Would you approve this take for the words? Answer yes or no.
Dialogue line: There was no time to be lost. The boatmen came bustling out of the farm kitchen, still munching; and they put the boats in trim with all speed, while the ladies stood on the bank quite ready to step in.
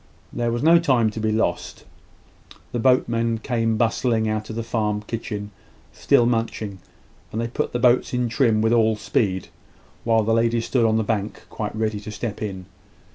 yes